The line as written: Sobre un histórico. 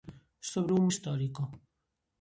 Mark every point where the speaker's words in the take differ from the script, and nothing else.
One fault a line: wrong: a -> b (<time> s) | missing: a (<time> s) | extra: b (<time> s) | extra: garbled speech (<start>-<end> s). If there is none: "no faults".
no faults